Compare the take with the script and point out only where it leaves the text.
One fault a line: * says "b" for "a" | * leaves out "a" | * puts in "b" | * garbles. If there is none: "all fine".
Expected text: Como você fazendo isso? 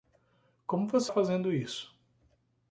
all fine